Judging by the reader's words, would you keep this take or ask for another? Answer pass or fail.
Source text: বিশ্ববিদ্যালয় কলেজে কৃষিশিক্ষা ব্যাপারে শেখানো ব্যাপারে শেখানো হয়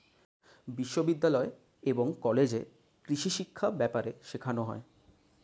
fail